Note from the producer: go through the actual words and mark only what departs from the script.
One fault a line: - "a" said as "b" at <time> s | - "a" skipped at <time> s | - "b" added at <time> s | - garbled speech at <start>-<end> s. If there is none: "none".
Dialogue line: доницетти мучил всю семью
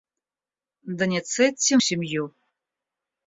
- "мучил всю" skipped at 1.8 s